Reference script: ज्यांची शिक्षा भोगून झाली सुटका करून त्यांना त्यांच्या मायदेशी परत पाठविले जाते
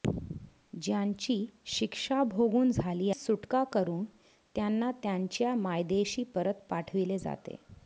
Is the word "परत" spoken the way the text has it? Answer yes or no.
yes